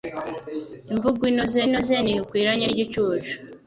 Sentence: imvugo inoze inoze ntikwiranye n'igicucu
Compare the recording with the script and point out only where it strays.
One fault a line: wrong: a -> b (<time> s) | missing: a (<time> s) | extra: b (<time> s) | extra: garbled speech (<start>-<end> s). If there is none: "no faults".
no faults